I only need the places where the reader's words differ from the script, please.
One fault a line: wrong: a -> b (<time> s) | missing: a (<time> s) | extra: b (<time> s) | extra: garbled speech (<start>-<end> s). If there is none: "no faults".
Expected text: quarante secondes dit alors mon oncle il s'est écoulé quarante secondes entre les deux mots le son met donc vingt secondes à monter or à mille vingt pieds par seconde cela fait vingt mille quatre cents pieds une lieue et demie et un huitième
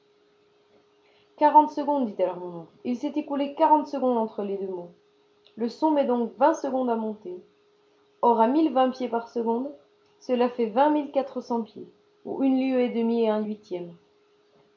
extra: ou (12.2 s)